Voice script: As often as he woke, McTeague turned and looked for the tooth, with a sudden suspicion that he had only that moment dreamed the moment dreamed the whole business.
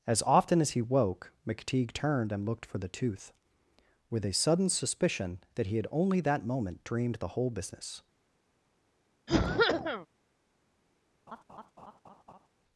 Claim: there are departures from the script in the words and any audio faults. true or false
true